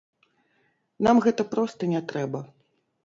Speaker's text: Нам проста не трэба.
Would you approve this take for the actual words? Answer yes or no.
no